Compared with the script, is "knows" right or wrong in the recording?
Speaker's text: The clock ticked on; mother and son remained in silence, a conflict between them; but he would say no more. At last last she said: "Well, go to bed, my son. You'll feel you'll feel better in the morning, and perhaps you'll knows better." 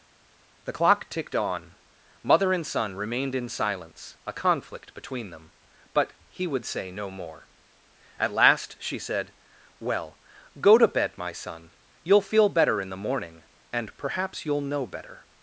wrong